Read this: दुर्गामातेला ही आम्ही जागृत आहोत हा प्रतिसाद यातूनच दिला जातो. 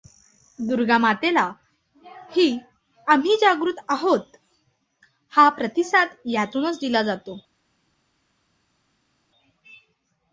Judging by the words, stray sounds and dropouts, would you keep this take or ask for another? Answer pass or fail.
pass